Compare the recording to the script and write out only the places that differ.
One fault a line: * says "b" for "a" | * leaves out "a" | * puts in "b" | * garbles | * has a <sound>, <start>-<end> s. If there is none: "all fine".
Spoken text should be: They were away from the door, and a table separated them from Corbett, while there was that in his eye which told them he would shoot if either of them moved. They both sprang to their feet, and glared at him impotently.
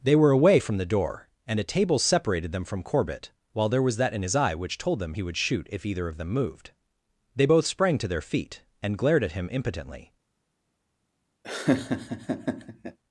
* has a laugh, 11.4-13.0 s